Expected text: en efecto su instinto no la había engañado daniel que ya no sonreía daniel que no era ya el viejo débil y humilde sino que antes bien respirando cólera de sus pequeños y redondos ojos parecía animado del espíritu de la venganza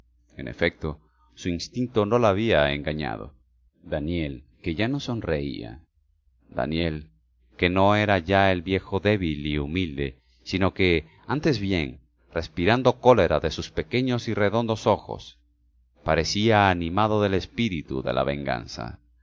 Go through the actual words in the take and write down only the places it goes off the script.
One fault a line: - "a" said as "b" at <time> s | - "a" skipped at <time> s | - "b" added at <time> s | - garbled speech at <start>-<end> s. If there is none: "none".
none